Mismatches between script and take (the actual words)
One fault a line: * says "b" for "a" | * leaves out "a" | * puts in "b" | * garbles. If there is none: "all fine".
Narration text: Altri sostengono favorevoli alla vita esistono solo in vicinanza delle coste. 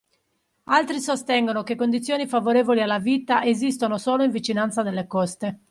* puts in "che condizioni"